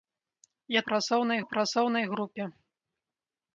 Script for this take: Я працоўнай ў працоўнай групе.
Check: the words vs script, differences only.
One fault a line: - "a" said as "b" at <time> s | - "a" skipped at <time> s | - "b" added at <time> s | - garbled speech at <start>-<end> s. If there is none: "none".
none